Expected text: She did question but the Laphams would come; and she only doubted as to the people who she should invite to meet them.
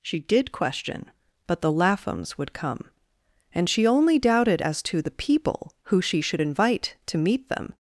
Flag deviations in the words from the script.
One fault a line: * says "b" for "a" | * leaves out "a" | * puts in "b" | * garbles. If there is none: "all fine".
all fine